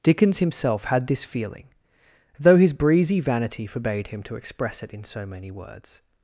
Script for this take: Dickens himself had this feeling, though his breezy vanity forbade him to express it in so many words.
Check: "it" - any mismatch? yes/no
no